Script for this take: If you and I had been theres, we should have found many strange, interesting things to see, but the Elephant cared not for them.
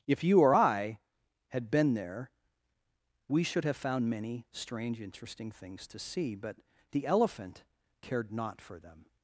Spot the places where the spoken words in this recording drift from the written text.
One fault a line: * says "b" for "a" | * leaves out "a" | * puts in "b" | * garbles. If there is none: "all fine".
* says "or" for "and"
* says "there" for "theres"